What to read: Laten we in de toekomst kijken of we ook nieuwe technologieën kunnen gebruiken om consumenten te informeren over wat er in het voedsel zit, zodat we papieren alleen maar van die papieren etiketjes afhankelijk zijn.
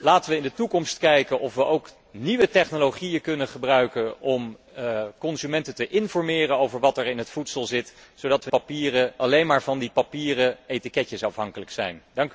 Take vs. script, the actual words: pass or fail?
pass